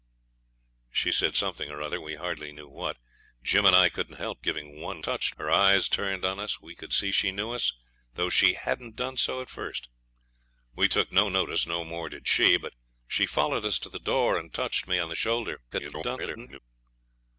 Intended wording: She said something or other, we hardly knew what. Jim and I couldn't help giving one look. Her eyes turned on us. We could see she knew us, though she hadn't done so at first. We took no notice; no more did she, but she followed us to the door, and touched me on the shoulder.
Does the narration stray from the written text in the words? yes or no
yes